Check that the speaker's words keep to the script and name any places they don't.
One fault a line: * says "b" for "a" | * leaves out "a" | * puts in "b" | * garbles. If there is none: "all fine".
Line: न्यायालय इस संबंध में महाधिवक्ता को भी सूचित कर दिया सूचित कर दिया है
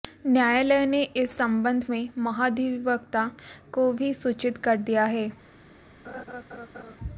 * puts in "ने"
* leaves out "सूचित कर दिया"